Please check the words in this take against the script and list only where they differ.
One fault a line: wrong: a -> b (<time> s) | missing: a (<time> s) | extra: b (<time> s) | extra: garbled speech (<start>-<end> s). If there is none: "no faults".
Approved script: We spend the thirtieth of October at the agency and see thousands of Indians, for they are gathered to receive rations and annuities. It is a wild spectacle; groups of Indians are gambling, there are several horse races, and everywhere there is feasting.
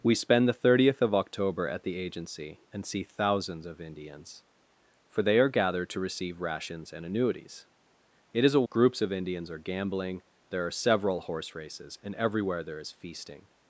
missing: wild spectacle (8.7 s)